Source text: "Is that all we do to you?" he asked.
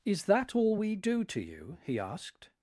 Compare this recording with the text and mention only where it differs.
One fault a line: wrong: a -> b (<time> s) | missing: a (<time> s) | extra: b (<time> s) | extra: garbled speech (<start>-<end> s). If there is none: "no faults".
no faults